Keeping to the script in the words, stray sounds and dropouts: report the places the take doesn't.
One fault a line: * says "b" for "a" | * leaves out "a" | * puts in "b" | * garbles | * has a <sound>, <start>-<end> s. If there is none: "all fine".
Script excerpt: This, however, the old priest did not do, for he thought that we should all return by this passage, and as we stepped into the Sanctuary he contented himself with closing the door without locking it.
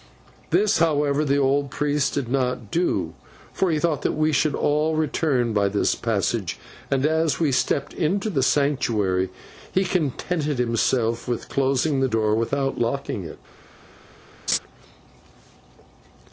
* has a laugh, 14.5-14.6 s